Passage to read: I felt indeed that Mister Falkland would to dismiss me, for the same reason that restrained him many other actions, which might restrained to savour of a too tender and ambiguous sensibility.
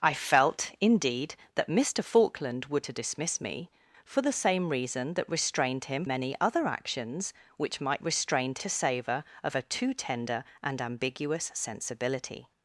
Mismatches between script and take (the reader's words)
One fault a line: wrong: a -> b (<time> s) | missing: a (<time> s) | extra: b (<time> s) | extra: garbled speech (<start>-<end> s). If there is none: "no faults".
no faults